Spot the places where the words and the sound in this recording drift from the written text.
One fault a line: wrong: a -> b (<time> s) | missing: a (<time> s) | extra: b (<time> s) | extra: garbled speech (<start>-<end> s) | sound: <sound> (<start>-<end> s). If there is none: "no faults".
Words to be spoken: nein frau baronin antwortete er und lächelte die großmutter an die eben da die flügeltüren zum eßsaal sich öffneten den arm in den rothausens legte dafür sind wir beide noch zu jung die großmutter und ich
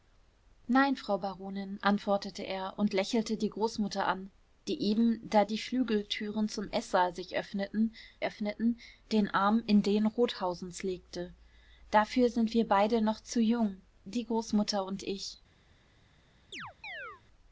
extra: öffneten (8.2 s)
sound: chirp (16.5-17.2 s)